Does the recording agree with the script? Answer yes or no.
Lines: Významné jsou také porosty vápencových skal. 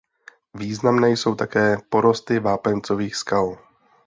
yes